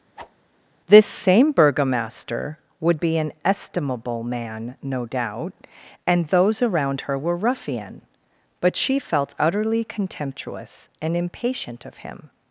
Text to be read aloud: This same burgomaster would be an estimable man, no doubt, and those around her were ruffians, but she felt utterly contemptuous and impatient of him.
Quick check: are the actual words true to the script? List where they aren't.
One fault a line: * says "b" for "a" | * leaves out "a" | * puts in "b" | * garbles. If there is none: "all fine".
* says "ruffian" for "ruffians"